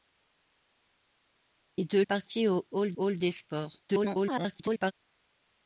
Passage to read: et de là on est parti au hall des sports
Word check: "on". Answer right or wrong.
wrong